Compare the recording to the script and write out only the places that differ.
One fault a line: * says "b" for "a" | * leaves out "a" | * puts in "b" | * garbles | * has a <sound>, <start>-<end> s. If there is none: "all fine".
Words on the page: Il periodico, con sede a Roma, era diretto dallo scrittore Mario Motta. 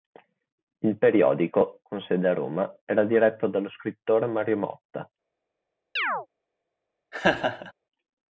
* has a chirp, 6.0-6.3 s
* has a laugh, 7.1-7.7 s